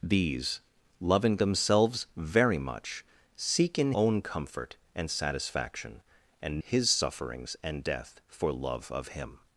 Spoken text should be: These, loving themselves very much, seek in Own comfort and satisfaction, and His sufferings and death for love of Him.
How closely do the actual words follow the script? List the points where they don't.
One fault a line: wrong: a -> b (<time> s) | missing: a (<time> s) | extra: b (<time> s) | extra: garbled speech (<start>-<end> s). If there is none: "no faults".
no faults